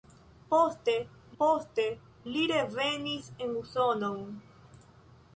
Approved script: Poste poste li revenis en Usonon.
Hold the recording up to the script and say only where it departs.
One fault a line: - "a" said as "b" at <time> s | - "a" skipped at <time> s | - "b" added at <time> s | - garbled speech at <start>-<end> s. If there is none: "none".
none